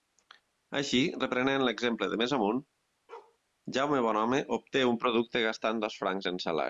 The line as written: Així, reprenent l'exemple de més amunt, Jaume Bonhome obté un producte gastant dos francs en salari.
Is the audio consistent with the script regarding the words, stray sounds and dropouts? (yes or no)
no